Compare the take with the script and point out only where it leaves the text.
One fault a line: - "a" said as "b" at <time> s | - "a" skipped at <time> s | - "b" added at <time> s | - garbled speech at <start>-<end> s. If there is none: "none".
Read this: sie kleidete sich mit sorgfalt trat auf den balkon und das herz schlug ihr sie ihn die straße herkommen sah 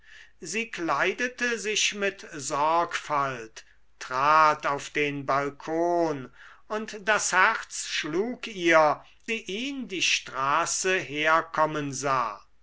none